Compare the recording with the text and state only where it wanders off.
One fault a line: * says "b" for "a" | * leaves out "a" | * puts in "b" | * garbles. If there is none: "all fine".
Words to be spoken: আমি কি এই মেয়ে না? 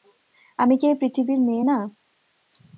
* puts in "পৃথিবীর"